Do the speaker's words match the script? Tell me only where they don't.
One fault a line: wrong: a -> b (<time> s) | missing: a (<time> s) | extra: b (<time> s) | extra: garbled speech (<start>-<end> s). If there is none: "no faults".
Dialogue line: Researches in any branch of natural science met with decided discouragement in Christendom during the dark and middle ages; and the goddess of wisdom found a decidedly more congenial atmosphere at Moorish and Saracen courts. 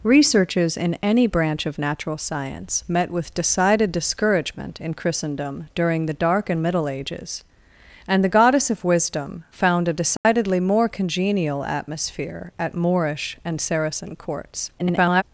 extra: garbled speech (14.8-15.2 s)